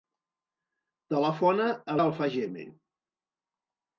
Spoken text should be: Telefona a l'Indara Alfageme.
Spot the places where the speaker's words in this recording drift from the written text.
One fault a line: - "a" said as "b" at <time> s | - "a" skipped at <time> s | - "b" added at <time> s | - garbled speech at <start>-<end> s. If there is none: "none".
- "l'Indara" skipped at 2.0 s